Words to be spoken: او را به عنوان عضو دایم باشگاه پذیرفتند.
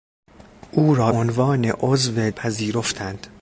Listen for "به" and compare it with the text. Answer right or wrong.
wrong